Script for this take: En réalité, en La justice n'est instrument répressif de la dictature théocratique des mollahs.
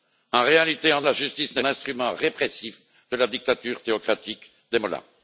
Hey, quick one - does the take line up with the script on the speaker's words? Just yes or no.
yes